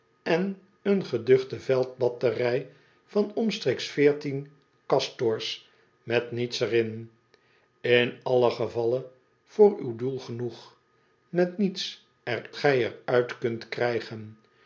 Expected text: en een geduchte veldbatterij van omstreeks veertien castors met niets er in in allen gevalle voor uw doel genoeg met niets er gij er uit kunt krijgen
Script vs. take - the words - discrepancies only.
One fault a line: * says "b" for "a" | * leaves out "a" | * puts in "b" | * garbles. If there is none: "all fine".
all fine